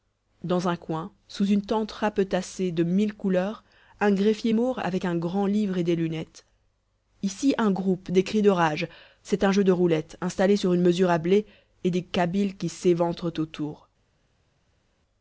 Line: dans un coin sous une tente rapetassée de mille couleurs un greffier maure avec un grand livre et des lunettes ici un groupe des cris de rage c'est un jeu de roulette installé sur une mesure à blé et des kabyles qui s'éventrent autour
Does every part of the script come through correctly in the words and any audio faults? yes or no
yes